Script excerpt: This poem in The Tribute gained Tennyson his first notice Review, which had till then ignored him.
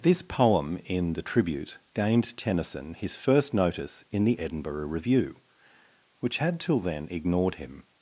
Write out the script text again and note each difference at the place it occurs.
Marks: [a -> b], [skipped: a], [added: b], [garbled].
This poem in The Tribute gained Tennyson his first notice [added: in the Edinburgh] Review, which had till then ignored him.